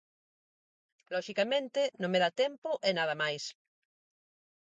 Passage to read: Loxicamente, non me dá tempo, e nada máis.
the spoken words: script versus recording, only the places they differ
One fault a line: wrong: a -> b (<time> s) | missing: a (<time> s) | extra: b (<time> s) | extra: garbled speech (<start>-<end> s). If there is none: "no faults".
no faults